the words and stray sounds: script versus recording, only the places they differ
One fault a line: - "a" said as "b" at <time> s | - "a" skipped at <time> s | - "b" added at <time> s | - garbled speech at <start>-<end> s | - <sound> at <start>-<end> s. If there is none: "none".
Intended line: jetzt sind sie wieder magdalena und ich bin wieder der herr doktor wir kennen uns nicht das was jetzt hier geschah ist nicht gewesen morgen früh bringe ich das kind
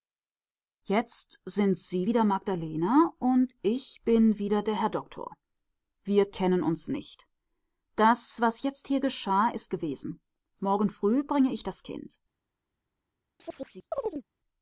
- "nicht" skipped at 9.7 s
- chirp at 13.4-14.3 s